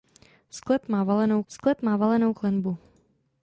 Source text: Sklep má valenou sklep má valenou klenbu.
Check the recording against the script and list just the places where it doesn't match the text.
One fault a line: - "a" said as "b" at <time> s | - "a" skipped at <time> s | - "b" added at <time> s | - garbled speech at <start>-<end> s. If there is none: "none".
none